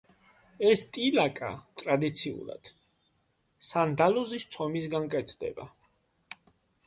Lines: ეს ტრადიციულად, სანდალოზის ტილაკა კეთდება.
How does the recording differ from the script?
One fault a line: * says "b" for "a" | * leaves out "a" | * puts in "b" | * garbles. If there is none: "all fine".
* puts in "ტილაკა"
* says "ცომისგან" for "ტილაკა"